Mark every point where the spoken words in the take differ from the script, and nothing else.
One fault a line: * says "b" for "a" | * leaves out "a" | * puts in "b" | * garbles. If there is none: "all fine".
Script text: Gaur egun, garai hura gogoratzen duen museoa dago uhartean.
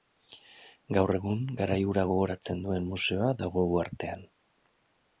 all fine